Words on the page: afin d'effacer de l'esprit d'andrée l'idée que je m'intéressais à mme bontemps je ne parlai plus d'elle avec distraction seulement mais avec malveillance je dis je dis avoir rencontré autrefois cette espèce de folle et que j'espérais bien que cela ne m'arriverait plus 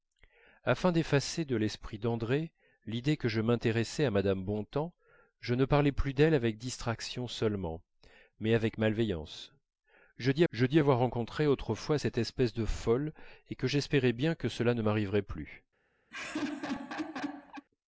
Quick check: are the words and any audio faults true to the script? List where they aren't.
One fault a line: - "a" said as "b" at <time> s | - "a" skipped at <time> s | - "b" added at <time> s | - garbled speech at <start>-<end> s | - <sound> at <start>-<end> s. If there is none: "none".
- laugh at 16.1-17.7 s